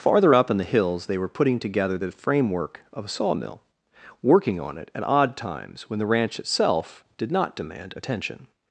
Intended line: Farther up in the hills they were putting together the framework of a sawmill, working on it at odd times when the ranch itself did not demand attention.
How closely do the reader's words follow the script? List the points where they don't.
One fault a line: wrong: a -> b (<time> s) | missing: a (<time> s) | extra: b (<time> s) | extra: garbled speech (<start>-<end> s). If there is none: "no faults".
no faults